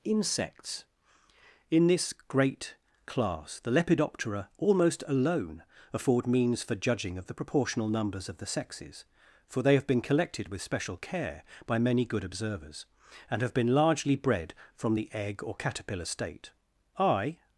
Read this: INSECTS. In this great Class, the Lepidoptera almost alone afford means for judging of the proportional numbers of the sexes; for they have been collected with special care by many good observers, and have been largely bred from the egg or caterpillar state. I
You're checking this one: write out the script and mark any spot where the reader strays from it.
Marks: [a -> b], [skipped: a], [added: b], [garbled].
INSECTS. In this great Class, the Lepidoptera almost alone afford means for judging of the proportional numbers of the sexes; for they have been collected with special care by many good observers, and have been largely bred from the egg or caterpillar state. I